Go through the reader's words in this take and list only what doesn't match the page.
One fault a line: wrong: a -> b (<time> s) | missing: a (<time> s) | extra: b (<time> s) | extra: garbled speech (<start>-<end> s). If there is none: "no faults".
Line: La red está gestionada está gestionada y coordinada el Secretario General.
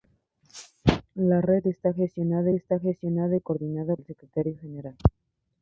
no faults